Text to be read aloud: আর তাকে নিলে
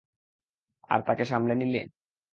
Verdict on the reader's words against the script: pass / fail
fail